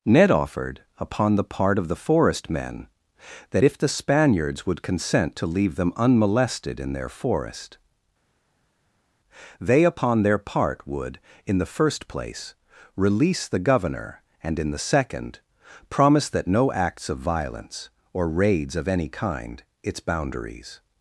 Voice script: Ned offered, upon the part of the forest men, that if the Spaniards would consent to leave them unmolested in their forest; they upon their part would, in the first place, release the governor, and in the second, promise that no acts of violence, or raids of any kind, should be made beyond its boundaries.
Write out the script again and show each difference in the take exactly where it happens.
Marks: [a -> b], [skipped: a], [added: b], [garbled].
Ned offered, upon the part of the forest men, that if the Spaniards would consent to leave them unmolested in their forest; they upon their part would, in the first place, release the governor, and in the second, promise that no acts of violence, or raids of any kind, [skipped: should be made beyond] its boundaries.